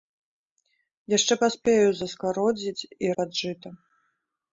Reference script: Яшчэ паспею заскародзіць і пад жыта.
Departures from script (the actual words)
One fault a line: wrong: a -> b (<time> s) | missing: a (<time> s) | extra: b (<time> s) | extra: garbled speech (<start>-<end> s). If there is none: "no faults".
no faults